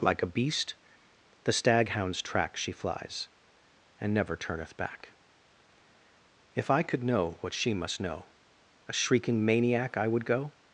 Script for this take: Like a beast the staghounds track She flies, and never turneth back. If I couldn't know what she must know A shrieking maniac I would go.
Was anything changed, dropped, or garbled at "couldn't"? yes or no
yes